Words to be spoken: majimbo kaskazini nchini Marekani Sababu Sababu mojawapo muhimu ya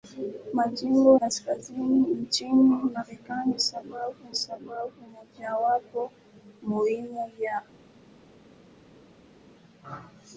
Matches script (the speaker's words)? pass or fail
pass